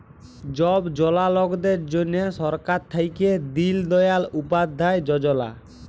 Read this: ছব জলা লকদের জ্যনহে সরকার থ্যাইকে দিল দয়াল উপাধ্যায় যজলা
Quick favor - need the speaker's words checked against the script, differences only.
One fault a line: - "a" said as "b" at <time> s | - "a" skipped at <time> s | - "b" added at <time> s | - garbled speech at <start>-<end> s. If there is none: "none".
none